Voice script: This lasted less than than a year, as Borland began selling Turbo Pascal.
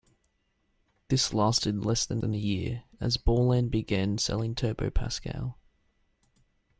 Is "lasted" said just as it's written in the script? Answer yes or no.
yes